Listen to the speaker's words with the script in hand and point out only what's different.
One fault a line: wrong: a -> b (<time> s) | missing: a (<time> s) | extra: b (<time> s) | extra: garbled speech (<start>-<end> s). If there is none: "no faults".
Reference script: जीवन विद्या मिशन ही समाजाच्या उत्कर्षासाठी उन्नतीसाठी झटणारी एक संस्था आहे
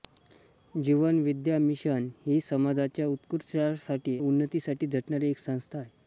no faults